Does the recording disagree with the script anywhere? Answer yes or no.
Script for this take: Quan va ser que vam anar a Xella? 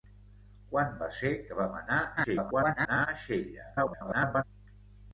yes